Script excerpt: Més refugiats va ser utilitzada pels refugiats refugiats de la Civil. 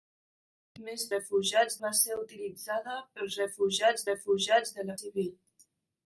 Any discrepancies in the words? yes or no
no